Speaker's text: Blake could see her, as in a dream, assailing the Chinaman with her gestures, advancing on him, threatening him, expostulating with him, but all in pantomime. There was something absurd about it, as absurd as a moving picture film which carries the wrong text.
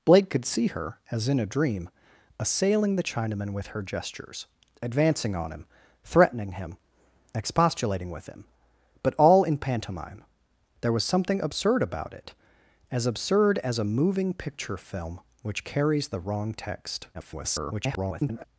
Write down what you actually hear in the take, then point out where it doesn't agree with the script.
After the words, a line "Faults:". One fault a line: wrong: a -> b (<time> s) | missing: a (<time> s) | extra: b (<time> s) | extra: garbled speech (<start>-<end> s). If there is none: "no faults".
Blake could see her, as in a dream, assailing the Chinaman with her gestures, advancing on him, threatening him, expostulating with him, but all in pantomime. There was something absurd about it, as absurd as a moving picture film which carries the wrong text. [garbled]
Faults:
extra: garbled speech (17.1-18.4 s)